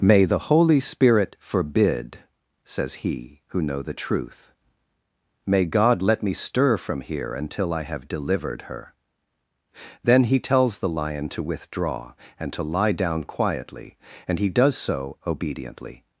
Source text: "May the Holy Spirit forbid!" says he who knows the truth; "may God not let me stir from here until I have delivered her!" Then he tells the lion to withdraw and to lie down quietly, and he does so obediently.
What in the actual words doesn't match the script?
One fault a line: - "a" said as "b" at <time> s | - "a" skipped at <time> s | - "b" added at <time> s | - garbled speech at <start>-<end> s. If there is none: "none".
- "knows" said as "know" at 3.6 s
- "not" skipped at 6.0 s